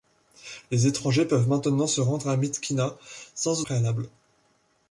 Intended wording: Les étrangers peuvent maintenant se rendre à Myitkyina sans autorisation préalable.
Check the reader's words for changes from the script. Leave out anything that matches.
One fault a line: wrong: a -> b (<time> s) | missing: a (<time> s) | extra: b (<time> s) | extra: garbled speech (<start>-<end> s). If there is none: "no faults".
missing: autorisation (3.6 s)